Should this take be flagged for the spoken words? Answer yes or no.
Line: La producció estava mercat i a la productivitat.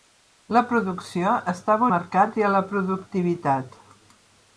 no